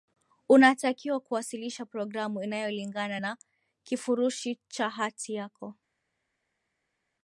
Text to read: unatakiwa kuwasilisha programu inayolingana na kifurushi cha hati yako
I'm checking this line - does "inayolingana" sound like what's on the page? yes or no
yes